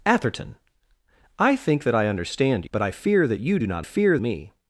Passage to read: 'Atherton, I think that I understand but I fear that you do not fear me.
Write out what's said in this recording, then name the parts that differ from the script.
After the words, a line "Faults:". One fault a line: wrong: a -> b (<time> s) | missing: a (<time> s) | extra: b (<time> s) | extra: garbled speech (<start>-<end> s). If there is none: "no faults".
'Atherton, I think that I understand but I fear that you do not fear me.
Faults:
no faults